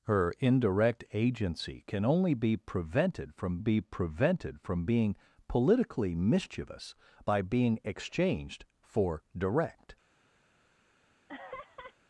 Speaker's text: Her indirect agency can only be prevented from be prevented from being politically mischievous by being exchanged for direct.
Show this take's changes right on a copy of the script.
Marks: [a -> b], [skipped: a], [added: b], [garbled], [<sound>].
Her indirect agency can only be prevented from be prevented from being politically mischievous by being exchanged for direct. [laugh]